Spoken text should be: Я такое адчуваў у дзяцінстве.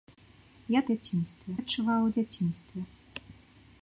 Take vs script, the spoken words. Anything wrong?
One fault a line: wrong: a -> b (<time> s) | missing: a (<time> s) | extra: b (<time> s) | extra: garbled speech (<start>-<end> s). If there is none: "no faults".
wrong: такое -> дзяцінстве (0.9 s)